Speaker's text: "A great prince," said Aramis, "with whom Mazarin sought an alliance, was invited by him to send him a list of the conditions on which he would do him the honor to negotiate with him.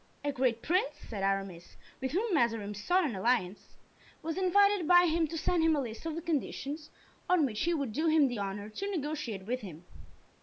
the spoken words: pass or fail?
pass